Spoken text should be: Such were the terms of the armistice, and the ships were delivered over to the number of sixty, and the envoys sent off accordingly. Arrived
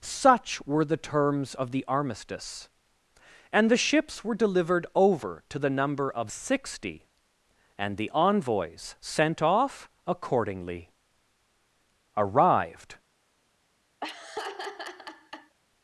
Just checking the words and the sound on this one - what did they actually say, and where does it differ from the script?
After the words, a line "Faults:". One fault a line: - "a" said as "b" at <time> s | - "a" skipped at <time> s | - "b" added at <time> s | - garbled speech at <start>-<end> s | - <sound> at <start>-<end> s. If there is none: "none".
Such were the terms of the armistice, and the ships were delivered over to the number of sixty, and the envoys sent off accordingly. Arrived
Faults:
- laugh at 14.0-15.6 s